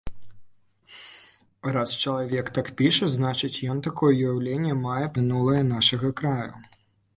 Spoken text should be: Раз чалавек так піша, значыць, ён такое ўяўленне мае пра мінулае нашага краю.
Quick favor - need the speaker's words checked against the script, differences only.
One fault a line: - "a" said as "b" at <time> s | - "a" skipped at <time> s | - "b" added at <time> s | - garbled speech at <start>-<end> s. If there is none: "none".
- "пра" skipped at 5.1 s